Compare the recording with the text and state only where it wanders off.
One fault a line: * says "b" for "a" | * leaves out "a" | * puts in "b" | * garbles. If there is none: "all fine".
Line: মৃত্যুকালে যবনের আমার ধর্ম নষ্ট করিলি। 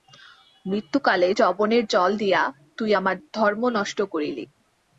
* puts in "জল দিয়া তুই"